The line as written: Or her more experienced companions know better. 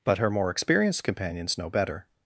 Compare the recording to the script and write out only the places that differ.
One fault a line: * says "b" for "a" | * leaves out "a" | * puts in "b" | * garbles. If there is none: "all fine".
* says "But" for "Or"